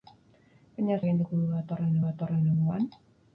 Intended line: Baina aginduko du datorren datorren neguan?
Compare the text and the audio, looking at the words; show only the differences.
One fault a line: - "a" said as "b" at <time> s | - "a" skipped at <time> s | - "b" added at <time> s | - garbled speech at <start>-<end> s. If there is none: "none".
none